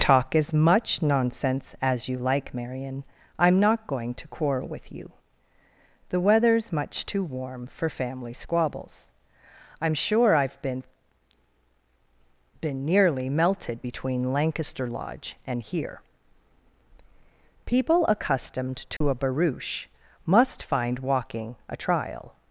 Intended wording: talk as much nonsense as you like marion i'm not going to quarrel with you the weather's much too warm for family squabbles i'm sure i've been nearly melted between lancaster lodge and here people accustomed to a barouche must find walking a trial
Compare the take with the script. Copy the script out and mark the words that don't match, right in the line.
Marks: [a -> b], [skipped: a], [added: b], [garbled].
talk as much nonsense as you like marion i'm not going to quarrel with you the weather's much too warm for family squabbles i'm sure i've been [added: been] nearly melted between lancaster lodge and here people accustomed to a barouche must find walking a trial